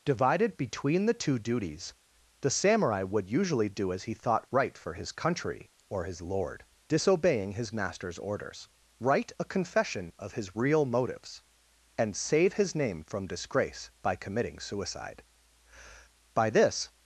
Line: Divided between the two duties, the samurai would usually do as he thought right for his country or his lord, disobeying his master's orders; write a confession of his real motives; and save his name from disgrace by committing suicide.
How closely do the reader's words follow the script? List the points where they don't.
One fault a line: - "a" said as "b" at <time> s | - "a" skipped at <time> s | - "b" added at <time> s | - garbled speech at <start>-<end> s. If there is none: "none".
- "By this" added at 16.3 s